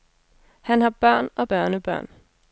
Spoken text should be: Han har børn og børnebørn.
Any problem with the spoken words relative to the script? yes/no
no